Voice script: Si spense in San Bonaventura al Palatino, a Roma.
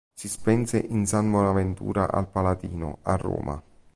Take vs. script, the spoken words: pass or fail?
pass